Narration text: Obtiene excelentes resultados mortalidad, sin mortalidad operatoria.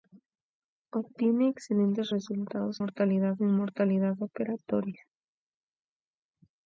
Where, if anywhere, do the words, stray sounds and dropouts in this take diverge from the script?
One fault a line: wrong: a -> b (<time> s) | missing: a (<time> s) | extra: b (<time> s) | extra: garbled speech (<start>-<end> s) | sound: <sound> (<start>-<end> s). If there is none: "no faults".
no faults